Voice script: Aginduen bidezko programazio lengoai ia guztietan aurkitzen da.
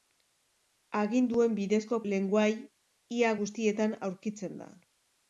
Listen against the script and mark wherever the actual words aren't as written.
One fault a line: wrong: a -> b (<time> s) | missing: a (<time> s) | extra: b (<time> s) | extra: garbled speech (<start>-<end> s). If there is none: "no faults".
missing: programazio (2.0 s)